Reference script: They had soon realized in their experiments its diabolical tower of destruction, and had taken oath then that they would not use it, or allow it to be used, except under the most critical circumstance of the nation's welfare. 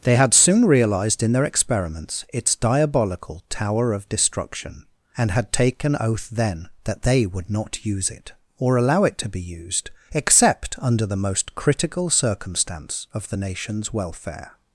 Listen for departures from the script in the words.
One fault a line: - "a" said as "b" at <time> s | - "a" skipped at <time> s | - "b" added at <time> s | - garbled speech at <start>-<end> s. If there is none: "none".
none